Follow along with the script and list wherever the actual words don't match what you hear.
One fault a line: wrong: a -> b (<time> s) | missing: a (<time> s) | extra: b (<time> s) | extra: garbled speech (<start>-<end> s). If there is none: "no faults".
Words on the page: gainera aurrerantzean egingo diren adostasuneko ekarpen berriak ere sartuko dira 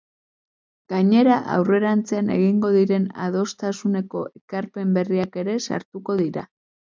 no faults